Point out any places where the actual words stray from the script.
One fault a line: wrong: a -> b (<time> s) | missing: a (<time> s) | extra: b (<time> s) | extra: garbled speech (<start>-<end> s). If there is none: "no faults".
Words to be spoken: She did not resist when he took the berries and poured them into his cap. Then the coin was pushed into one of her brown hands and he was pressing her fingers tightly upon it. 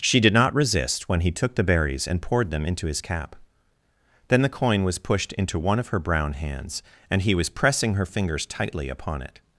no faults